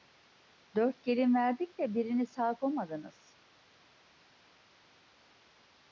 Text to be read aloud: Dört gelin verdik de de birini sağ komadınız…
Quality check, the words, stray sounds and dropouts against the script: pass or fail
fail